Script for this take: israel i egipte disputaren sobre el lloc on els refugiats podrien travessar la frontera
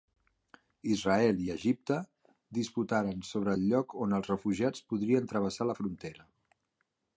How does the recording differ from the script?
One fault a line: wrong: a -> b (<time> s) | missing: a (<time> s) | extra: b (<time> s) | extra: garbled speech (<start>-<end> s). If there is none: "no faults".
no faults